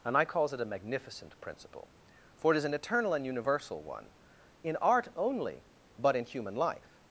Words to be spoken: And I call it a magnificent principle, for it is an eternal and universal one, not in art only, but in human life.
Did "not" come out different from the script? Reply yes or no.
yes